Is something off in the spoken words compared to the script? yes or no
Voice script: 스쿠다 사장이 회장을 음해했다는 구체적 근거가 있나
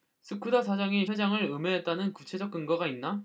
no